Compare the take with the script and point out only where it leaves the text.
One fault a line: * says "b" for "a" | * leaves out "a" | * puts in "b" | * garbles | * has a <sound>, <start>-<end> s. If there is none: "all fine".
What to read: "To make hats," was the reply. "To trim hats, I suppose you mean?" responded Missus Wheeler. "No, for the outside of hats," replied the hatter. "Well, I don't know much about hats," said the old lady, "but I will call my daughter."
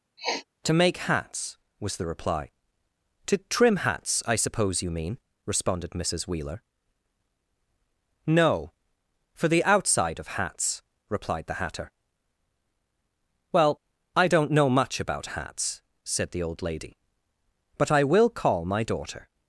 * has a sniff, 0.2-0.5 s